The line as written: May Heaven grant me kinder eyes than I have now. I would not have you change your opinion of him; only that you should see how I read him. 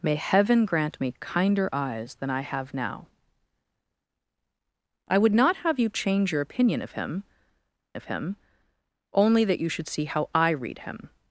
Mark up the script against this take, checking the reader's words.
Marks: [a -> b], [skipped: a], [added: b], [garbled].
May Heaven grant me kinder eyes than I have now. I would not have you change your opinion of him; [added: of him] only that you should see how I read him.